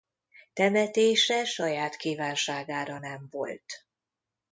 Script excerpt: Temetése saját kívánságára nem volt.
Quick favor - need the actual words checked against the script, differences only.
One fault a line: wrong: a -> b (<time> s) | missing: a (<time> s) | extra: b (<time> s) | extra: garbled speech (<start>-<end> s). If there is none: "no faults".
no faults